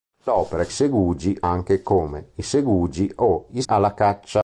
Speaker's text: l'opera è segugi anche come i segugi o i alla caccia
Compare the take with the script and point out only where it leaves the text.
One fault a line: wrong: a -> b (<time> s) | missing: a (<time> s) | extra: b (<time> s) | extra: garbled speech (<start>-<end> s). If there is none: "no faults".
no faults